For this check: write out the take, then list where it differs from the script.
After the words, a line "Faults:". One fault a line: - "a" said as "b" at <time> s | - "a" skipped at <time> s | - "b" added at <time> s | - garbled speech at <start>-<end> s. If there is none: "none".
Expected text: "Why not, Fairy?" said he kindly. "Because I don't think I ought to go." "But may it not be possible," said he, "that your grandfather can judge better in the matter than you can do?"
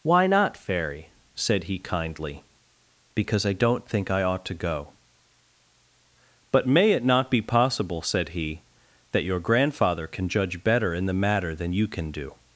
"Why not, Fairy?" said he kindly. "Because I don't think I ought to go." "But may it not be possible," said he, "that your grandfather can judge better in the matter than you can do?"
Faults:
none